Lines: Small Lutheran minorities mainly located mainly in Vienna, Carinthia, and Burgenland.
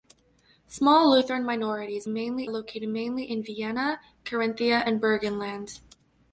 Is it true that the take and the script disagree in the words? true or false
false